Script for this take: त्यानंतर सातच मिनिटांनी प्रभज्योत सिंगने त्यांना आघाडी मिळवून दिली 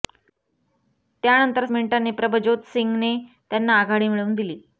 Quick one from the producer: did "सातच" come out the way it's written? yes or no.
no